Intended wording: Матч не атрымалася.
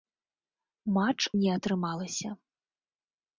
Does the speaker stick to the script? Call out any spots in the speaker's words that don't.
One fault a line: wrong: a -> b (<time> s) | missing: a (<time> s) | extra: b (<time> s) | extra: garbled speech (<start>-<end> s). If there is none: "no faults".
no faults